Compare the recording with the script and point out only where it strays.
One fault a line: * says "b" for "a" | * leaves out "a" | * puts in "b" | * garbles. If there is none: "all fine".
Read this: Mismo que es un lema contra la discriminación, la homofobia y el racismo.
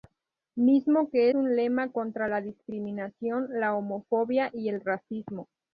* leaves out "es"